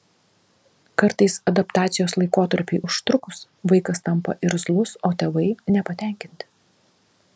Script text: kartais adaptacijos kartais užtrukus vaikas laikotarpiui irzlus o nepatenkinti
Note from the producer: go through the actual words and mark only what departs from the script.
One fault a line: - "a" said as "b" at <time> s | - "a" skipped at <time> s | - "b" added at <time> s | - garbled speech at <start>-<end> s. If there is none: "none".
- "kartais" said as "laikotarpiui" at 2.2 s
- "laikotarpiui" said as "tampa" at 4.1 s
- "tėvai" added at 5.2 s